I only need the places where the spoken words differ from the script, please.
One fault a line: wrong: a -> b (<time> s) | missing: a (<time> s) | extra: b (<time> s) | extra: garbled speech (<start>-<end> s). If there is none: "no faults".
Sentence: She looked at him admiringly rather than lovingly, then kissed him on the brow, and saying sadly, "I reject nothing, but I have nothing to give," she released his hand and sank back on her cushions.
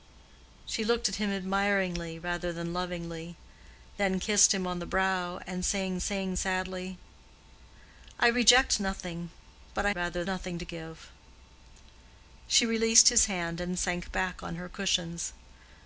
extra: saying (6.0 s)
wrong: have -> rather (9.9 s)